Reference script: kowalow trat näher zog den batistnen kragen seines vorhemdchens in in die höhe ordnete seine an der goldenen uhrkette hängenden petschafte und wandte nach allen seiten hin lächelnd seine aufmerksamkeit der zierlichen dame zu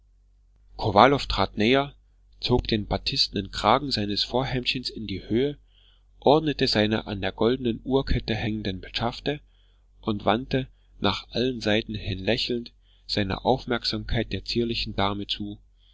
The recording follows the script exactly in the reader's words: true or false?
false